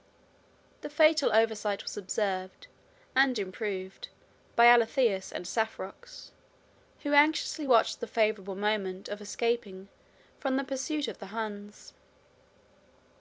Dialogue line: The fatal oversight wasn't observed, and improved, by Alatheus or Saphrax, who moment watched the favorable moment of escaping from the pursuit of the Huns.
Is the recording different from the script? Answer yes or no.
yes